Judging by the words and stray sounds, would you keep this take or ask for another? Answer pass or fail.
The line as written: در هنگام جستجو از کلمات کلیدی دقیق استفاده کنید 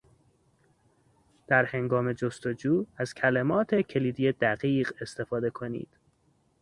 pass